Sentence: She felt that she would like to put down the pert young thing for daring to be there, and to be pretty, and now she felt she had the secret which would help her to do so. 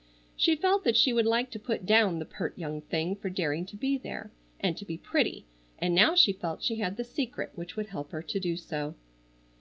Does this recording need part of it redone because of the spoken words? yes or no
no